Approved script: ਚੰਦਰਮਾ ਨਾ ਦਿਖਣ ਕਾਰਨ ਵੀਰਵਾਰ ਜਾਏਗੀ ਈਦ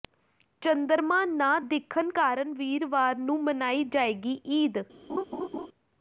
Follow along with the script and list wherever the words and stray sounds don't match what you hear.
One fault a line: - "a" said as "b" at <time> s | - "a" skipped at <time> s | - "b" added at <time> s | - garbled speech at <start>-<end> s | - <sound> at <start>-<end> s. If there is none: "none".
- "ਨੂੰ ਮਨਾਈ" added at 3.2 s
- laugh at 5.1-5.7 s